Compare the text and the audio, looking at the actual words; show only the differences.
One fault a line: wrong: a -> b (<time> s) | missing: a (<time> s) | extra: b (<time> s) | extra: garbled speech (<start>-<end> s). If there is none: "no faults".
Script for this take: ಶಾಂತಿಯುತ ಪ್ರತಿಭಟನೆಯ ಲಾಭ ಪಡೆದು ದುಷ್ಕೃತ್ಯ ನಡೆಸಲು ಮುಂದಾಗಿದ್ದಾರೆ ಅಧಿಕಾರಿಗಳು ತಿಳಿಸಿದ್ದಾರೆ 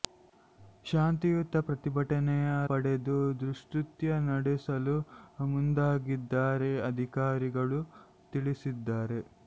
missing: ಲಾಭ (2.5 s)